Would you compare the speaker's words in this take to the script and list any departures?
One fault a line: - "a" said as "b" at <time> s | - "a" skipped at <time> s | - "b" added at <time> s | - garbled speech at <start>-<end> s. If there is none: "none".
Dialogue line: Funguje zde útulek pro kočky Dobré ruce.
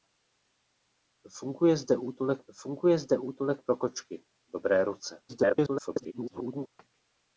- "funguje zde útulek" added at 2.5 s
- garbled speech at 5.3-6.7 s